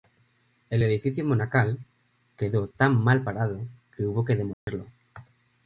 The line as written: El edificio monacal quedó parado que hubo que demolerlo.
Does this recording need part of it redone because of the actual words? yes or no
yes